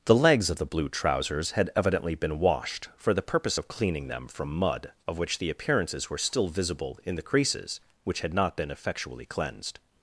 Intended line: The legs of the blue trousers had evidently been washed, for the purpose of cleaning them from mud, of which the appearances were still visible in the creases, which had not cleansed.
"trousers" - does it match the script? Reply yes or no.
yes